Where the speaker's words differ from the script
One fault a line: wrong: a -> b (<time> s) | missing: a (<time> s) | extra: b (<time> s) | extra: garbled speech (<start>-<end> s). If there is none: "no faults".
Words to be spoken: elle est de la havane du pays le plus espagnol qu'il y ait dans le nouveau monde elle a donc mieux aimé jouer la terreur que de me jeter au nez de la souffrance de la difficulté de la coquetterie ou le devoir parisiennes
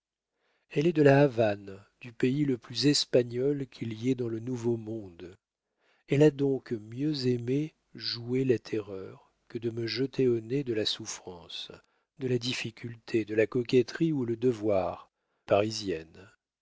no faults